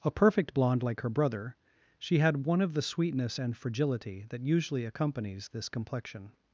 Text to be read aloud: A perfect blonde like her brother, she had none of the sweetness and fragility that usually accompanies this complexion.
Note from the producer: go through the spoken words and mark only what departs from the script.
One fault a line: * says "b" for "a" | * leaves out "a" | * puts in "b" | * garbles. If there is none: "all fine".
* says "one" for "none"